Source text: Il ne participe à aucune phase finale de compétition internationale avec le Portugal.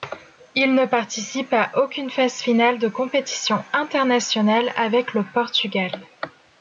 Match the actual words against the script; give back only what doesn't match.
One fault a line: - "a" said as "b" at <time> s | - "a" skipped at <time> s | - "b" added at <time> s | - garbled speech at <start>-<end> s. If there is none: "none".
none